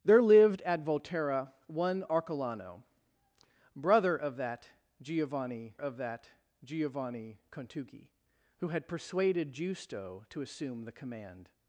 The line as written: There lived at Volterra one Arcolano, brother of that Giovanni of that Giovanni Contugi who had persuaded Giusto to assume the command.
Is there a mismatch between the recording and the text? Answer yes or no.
no